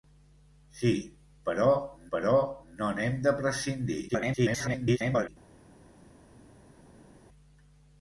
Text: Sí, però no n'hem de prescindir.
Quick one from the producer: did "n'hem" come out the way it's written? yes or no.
yes